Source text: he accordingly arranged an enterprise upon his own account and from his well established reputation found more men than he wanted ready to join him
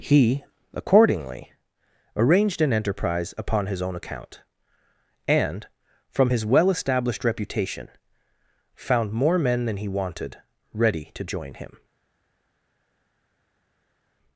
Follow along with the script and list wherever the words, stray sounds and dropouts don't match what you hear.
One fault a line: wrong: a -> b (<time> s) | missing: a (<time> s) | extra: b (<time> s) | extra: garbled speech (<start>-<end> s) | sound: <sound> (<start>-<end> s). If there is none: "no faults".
no faults